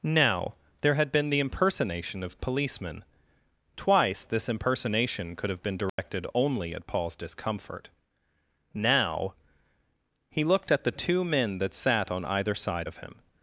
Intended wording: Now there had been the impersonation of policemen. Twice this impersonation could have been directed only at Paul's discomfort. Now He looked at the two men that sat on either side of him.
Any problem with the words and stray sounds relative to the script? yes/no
yes